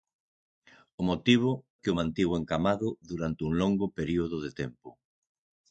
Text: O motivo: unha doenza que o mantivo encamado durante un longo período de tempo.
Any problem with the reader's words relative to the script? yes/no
yes